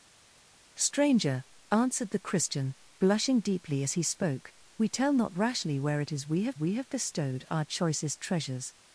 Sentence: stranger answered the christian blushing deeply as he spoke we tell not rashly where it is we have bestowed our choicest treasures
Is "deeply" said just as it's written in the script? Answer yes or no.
yes